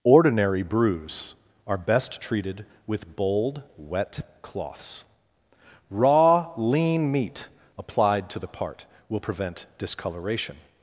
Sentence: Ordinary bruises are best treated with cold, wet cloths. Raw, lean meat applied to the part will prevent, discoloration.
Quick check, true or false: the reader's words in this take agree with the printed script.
false